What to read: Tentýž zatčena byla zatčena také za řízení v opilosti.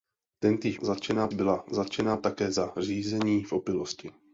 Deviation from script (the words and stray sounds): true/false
false